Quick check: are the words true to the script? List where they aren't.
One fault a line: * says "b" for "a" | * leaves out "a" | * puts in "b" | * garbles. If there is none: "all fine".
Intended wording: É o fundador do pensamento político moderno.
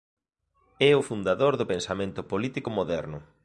all fine